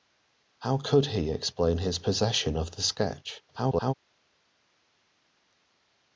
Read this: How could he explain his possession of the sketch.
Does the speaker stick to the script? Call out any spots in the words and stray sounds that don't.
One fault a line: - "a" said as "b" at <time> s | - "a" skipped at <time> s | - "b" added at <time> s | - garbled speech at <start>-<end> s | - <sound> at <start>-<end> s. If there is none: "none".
- garbled speech at 3.5-3.9 s